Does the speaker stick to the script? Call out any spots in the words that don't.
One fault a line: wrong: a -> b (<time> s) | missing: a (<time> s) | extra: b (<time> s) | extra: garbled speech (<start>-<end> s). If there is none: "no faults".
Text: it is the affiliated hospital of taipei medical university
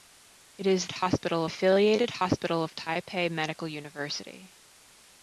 wrong: the -> hospital (0.9 s)